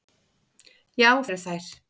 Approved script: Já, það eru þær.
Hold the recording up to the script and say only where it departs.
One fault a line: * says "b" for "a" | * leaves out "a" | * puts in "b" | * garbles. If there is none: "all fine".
* leaves out "það"